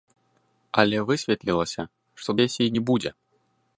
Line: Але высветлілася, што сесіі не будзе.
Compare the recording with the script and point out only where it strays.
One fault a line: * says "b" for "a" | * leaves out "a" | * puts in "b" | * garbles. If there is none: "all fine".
all fine